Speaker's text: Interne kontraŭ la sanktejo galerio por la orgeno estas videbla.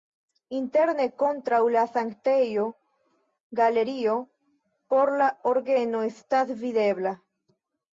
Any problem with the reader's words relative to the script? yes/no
no